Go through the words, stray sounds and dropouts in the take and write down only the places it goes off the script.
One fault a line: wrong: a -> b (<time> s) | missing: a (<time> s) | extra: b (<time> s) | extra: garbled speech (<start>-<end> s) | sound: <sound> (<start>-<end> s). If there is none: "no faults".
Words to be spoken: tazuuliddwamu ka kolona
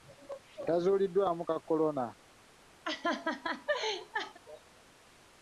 sound: laugh (2.8-4.4 s)